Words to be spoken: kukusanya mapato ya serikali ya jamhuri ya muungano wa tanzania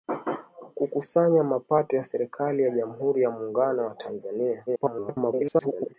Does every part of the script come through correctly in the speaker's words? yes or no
no